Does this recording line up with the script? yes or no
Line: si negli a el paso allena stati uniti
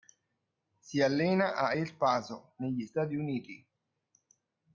no